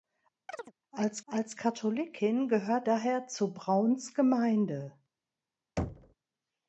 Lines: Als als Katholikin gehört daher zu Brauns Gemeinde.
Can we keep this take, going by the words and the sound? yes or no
no